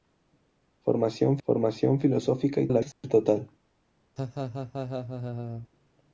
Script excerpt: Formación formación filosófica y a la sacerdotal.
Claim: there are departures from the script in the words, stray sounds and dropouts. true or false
true